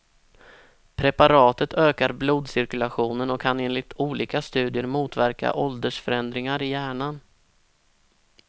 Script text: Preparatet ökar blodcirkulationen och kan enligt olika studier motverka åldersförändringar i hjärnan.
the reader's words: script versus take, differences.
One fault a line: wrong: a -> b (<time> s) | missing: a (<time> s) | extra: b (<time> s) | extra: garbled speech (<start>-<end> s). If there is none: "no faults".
no faults